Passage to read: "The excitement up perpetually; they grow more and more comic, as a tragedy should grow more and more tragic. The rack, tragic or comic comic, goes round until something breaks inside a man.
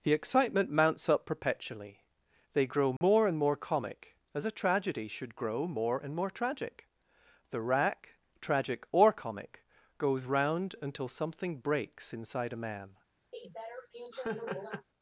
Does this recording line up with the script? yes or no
no